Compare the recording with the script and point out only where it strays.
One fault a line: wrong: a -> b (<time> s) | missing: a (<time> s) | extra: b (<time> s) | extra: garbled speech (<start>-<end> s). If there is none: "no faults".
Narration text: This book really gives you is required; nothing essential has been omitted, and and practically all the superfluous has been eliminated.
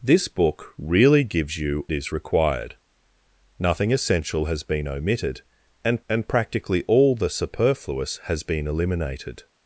no faults